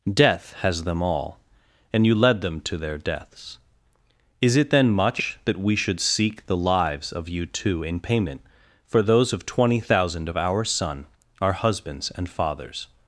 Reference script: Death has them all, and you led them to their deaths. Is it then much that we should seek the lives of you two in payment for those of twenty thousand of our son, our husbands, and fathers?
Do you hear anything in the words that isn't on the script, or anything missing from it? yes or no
no